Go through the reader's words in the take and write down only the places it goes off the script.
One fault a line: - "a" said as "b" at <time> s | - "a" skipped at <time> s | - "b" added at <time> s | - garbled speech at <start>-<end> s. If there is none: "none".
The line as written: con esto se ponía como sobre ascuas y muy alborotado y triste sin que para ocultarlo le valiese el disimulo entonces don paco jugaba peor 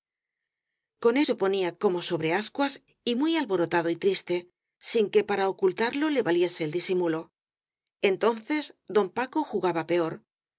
- "esto" skipped at 1.1 s